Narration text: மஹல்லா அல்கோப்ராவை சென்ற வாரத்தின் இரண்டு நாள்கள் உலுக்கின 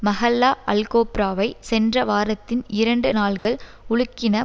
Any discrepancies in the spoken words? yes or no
no